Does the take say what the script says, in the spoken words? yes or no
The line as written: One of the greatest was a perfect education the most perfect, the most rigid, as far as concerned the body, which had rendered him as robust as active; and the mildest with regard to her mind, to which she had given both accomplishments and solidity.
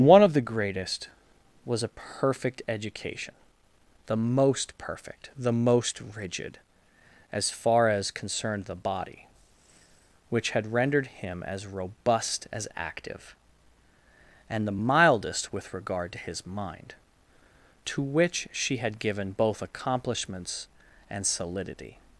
no